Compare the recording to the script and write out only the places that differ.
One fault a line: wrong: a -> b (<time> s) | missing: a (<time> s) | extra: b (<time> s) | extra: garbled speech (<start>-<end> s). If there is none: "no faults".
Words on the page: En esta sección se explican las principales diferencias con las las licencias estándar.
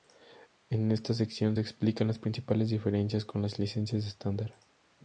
missing: las (3.6 s)